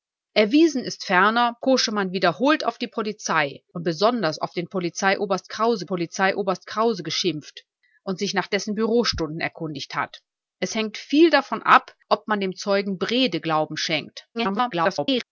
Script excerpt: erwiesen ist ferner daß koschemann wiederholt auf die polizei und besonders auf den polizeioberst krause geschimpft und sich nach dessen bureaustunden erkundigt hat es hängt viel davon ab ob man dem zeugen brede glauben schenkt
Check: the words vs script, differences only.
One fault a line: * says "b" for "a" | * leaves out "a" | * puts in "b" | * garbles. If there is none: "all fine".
* leaves out "daß"
* puts in "polizeioberst krause"
* garbles